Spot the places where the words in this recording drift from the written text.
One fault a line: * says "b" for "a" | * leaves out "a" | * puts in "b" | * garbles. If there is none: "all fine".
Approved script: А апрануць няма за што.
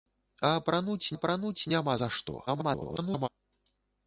* puts in "апрануць"
* garbles